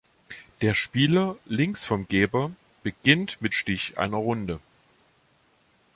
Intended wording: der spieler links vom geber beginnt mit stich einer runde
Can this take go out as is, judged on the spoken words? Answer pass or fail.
pass